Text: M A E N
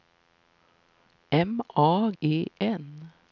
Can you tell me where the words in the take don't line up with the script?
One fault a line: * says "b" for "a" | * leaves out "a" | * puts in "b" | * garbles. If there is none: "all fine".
all fine